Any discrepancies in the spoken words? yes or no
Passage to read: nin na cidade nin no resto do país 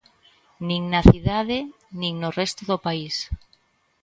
no